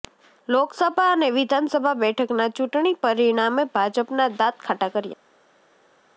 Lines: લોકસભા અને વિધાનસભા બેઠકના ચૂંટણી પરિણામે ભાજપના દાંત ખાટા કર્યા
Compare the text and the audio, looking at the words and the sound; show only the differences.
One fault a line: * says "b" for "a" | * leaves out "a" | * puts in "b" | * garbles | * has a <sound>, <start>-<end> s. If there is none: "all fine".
all fine